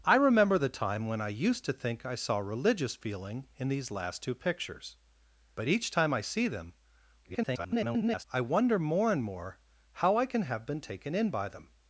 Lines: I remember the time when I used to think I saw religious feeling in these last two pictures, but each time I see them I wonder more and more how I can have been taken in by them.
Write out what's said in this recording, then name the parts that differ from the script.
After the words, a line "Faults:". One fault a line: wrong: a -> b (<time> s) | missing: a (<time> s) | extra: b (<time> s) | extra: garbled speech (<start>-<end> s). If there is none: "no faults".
I remember the time when I used to think I saw religious feeling in these last two pictures, but each time I see them [garbled] I wonder more and more how I can have been taken in by them.
Faults:
extra: garbled speech (7.2-8.2 s)